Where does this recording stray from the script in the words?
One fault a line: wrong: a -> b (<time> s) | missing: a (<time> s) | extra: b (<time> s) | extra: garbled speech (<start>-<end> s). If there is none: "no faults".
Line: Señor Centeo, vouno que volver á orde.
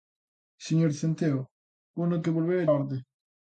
no faults